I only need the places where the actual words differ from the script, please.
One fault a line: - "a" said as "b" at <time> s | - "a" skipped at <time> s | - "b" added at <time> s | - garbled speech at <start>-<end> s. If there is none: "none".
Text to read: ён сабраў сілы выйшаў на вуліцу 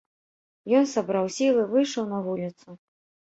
none